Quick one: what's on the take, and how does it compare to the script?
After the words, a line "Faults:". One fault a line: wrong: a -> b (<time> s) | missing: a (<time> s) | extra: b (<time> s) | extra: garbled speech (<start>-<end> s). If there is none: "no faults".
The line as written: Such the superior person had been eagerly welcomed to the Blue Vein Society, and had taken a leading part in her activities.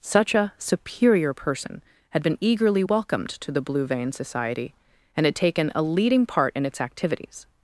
Such a superior person had been eagerly welcomed to the Blue Vein Society, and had taken a leading part in its activities.
Faults:
wrong: the -> a (0.3 s)
wrong: her -> its (6.7 s)